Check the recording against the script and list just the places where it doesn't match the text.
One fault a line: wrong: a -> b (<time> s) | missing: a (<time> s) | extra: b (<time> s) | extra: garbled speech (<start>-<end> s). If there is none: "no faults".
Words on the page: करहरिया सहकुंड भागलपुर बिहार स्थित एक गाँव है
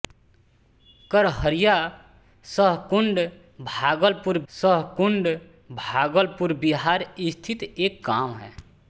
extra: सहकुंड भागलपुर (4.5 s)